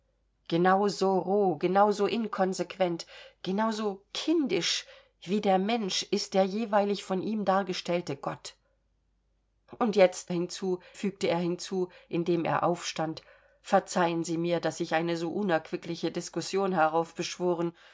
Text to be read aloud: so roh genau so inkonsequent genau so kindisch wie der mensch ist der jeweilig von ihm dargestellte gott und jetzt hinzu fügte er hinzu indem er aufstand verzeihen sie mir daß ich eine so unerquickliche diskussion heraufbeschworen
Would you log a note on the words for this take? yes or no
no